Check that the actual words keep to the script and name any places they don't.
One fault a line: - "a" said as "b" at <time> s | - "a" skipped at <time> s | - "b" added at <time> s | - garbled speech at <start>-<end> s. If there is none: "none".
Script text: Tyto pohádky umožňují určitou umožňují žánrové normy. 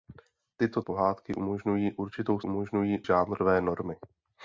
none